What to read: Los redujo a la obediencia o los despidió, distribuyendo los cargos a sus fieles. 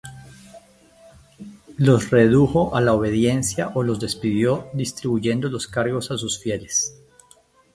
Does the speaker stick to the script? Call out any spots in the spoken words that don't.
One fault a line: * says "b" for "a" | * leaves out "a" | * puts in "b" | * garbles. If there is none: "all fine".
all fine